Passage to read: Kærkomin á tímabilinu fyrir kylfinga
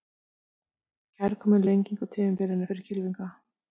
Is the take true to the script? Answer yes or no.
no